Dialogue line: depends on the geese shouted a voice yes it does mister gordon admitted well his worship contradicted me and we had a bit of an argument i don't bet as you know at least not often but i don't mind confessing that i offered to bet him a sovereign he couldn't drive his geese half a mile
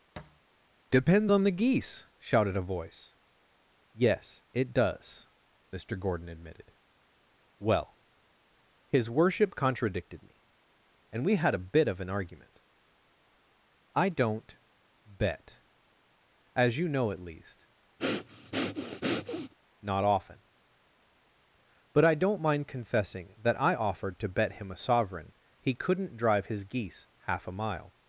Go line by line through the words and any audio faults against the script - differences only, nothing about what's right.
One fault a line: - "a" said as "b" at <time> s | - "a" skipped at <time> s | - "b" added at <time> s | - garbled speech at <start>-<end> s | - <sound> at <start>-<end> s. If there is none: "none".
- thud at 0.2-0.4 s
- breath at 18.0-19.5 s